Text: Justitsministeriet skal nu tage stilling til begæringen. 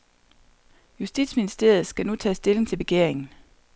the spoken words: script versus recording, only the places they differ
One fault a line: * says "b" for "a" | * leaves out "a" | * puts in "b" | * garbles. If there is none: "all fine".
all fine